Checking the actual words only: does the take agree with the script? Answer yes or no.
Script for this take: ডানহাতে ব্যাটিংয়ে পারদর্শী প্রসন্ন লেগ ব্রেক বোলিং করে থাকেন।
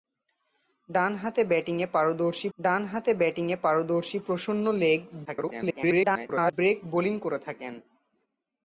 no